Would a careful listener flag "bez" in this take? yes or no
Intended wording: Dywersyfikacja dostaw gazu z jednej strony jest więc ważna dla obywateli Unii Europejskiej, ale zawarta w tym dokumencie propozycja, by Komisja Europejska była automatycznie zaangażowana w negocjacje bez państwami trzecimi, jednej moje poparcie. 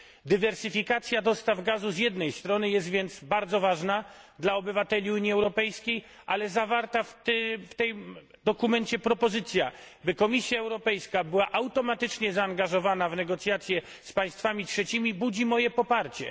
yes